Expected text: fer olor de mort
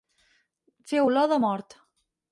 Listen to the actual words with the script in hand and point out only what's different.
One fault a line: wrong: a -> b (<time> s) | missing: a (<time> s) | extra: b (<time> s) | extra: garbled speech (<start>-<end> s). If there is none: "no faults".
no faults